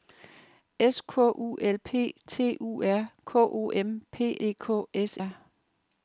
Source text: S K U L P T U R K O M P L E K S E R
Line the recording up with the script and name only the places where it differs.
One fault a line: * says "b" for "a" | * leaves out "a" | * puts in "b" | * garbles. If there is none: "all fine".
* leaves out "L"
* leaves out "E"